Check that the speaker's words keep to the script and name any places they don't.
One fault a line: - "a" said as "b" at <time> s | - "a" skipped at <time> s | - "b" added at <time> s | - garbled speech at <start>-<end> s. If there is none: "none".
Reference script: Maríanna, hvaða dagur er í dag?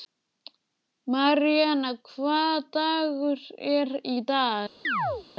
none